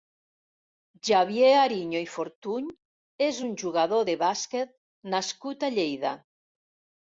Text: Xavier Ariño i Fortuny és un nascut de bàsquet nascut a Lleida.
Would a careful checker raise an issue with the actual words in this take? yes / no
yes